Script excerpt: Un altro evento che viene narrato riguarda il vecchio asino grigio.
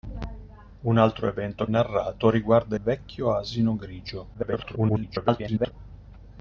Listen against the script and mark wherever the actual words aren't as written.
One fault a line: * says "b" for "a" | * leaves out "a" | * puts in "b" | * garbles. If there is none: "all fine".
* leaves out "che viene"
* leaves out "il"
* garbles